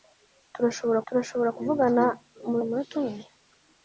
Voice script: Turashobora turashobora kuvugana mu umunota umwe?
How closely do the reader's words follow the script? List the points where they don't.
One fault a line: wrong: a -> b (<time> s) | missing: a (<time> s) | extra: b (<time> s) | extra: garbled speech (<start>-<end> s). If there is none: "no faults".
no faults